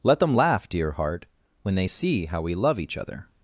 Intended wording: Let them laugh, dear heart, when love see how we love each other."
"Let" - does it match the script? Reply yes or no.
yes